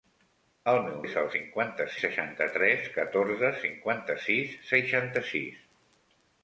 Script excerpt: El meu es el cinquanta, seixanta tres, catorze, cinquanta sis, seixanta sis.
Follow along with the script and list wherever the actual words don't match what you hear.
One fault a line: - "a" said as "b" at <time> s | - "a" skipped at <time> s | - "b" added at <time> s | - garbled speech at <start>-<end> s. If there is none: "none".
none